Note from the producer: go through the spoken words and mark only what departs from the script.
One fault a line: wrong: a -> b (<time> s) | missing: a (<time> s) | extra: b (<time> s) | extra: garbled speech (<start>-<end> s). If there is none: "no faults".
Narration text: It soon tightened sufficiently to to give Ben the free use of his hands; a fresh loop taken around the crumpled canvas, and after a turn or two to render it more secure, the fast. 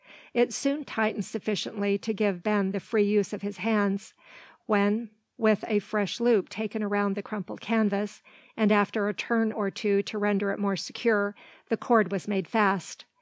missing: to (2.1 s)
extra: when with (4.7 s)
extra: cord was made (11.8 s)